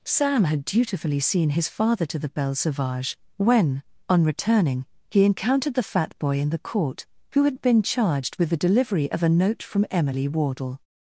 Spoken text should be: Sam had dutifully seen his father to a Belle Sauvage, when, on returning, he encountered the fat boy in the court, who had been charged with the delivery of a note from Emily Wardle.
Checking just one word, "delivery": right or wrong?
right